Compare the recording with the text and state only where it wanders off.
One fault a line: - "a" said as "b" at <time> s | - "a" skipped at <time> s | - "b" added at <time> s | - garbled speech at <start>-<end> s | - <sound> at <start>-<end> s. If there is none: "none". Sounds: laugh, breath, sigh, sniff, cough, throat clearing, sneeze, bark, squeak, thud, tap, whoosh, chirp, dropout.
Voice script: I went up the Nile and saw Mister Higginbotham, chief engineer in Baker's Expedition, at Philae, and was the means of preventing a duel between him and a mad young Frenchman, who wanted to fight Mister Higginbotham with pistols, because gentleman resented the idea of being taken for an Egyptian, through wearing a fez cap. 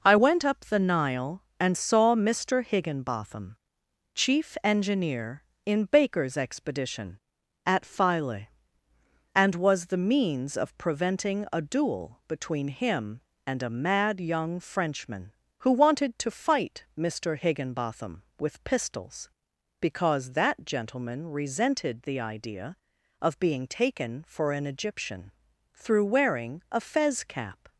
- "that" added at 20.3 s